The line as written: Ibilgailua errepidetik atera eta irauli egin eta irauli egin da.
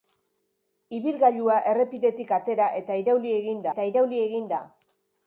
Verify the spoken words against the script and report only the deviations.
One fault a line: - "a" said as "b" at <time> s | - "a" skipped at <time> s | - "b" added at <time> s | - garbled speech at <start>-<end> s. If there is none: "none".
none